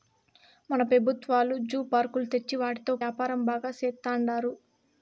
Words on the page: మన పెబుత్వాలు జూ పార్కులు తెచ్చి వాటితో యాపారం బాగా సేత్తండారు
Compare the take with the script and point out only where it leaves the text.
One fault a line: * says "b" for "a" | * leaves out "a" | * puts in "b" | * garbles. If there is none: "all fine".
all fine